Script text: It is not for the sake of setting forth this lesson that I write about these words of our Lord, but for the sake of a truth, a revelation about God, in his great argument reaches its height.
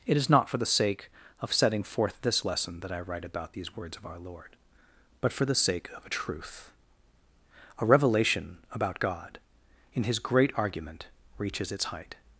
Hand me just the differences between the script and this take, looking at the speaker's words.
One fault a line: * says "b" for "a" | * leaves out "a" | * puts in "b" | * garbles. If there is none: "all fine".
all fine